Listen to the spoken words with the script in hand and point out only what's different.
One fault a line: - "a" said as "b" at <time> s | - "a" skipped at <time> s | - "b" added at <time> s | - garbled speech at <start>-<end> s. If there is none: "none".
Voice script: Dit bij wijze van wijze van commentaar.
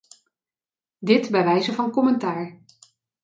- "wijze van" skipped at 1.9 s